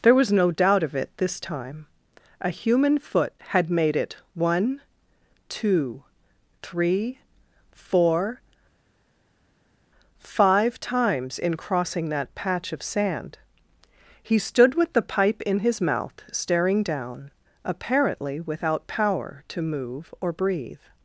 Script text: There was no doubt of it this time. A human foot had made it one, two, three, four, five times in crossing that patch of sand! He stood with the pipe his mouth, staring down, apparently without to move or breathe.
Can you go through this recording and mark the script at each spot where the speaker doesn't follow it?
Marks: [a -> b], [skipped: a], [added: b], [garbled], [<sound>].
There was no doubt of it this time. A human foot had made it one, two, three, four, five times in crossing that patch of sand! He stood with the pipe [added: in] his mouth, staring down, apparently without [added: power] to move or breathe.